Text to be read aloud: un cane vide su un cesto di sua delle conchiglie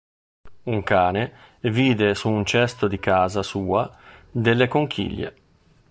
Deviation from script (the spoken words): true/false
true